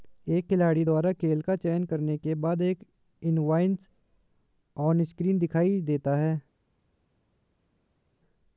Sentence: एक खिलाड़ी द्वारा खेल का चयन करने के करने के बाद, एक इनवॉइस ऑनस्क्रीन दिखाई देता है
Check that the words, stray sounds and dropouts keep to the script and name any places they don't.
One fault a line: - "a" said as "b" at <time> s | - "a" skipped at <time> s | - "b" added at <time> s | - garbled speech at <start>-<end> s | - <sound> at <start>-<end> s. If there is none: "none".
- "करने के" skipped at 2.3 s